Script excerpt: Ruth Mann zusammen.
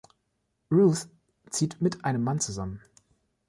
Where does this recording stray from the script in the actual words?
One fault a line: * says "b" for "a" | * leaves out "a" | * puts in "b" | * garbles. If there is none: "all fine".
* puts in "zieht mit einem"